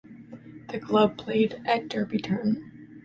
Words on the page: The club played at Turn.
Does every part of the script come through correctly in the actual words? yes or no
no